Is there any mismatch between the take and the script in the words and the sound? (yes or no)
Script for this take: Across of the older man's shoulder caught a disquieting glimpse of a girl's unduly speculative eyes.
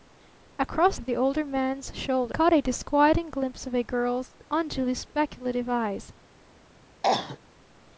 yes